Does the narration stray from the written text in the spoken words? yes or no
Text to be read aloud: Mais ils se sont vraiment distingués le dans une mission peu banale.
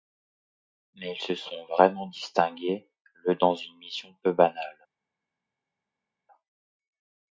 no